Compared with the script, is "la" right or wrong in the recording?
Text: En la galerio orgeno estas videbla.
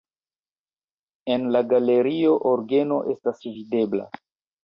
right